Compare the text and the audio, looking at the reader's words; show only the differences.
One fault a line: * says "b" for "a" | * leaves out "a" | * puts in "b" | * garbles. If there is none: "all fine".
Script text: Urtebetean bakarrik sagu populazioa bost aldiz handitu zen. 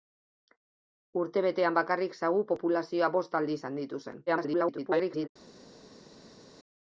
* garbles